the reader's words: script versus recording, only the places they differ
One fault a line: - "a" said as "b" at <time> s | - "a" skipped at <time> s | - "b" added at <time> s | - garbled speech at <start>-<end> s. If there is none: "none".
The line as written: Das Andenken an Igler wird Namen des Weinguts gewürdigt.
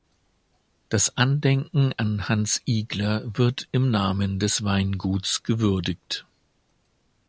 - "Hans" added at 2.3 s
- "im" added at 3.7 s